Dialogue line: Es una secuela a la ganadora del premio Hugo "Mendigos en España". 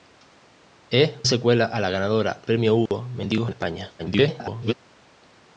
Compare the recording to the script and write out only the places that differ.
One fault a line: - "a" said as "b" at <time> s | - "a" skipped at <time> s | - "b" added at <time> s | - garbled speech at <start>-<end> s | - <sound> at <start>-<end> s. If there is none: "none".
- "una" skipped at 1.2 s
- "del" skipped at 2.4 s
- dropout at 2.9-2.9 s
- garbled speech at 4.0-4.7 s